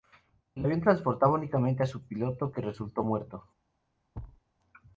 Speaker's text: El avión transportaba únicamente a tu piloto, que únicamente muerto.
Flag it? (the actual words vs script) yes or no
yes